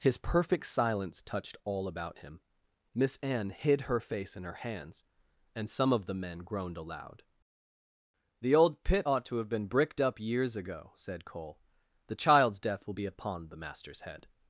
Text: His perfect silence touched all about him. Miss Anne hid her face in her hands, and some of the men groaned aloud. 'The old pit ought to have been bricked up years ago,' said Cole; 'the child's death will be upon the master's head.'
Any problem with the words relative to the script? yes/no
no